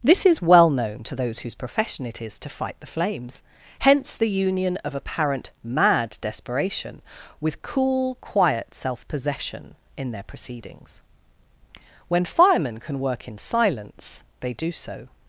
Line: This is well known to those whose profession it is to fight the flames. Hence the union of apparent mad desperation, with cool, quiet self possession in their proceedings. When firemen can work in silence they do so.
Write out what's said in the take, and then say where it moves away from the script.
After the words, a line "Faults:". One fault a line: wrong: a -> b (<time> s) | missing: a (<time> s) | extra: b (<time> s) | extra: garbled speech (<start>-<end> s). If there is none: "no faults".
This is well known to those whose profession it is to fight the flames. Hence the union of apparent mad desperation, with cool, quiet self possession in their proceedings. When firemen can work in silence they do so.
Faults:
no faults